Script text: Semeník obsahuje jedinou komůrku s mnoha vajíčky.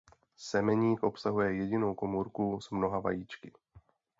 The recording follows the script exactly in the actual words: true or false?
true